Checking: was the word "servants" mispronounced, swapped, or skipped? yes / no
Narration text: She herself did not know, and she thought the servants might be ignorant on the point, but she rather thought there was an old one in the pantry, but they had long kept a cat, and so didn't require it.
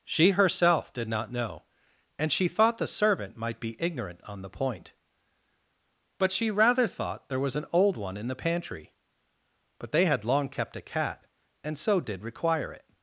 yes